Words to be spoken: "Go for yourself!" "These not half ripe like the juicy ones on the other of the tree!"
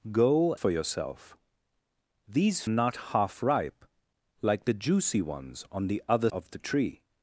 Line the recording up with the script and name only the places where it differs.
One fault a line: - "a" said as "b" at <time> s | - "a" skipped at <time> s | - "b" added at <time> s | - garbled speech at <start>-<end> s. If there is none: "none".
none